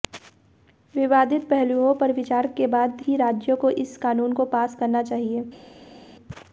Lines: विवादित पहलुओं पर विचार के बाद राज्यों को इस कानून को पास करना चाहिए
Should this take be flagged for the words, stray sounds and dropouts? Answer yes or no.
yes